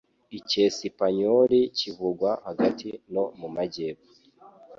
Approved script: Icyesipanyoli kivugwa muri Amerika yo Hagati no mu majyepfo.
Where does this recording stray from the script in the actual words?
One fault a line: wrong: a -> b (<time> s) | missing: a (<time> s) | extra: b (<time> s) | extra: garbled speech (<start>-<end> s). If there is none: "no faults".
missing: muri Amerika yo (2.3 s)